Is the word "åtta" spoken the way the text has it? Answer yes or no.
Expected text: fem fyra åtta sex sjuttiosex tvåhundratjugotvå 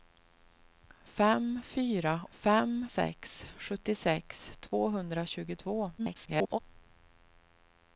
no